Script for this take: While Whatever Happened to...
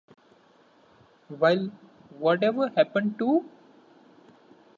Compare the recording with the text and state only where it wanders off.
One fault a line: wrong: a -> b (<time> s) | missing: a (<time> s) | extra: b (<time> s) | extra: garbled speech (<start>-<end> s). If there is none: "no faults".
no faults